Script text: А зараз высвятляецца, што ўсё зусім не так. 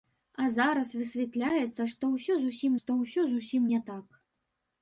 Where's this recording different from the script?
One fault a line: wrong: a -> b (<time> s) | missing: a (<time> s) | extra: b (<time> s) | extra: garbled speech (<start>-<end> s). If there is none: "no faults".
extra: што ўсё зусім (2.8 s)